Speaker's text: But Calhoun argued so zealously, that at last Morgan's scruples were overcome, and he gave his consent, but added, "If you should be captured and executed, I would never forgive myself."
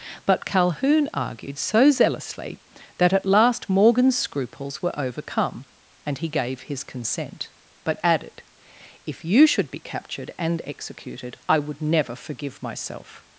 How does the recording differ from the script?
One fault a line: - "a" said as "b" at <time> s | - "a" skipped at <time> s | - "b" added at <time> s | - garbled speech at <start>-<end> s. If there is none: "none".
none